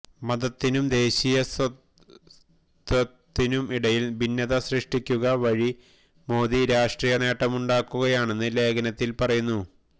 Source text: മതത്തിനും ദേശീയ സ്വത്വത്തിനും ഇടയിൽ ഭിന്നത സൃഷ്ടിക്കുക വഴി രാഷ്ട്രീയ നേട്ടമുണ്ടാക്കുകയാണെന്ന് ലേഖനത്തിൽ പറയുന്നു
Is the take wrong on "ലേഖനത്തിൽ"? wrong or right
right